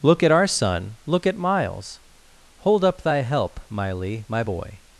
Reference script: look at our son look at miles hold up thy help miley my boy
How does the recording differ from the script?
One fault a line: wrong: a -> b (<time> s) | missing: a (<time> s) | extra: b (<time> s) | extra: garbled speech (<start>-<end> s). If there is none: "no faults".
no faults